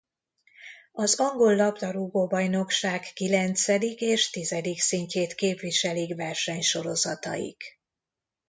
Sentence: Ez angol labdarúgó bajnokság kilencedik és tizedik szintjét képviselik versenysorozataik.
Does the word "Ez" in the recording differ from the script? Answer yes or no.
yes